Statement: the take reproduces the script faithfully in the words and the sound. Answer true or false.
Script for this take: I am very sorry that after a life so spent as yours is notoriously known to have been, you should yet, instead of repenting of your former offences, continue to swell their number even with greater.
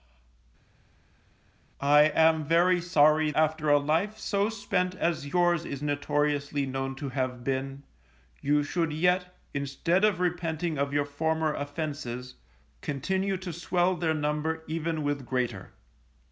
false